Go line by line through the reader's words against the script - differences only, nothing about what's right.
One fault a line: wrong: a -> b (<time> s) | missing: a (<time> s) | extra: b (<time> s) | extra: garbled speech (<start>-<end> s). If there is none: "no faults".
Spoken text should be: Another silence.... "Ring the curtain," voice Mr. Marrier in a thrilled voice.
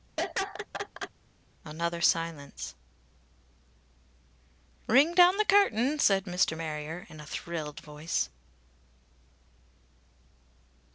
extra: down (5.1 s)
wrong: voice -> said (6.0 s)